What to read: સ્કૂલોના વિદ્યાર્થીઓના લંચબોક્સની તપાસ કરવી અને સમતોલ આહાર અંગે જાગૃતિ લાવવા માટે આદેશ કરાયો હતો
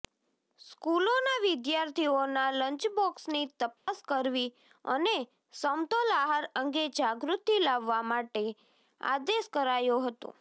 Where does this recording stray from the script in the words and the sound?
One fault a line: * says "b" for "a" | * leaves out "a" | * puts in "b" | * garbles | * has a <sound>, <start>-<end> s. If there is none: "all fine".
* has a dropout, 3.8-3.9 s